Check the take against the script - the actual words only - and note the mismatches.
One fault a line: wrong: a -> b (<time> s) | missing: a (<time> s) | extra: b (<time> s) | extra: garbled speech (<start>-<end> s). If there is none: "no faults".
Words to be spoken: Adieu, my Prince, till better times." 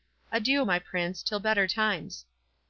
no faults